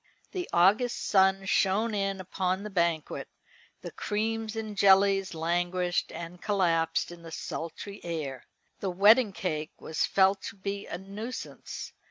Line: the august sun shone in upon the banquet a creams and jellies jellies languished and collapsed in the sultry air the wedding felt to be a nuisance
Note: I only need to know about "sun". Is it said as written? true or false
true